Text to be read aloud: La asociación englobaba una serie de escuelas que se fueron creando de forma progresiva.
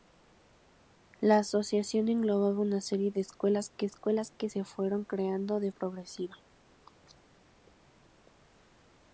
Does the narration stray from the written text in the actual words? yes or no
yes